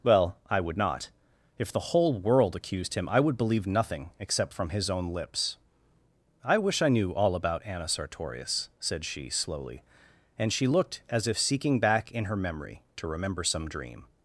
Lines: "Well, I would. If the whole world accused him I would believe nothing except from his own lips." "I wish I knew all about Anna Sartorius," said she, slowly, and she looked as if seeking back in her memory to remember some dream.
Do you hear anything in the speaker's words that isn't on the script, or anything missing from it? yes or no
yes